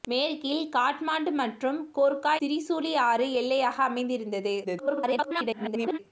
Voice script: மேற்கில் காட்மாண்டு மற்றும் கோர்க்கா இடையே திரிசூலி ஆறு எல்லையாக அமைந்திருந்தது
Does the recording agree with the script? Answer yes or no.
no